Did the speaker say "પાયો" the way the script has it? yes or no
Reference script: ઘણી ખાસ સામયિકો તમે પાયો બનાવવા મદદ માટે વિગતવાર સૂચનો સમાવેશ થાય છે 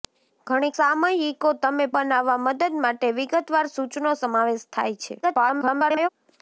no